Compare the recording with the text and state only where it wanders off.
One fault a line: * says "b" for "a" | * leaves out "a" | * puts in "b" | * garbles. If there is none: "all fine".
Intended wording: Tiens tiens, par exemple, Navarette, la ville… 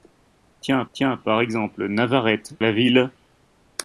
all fine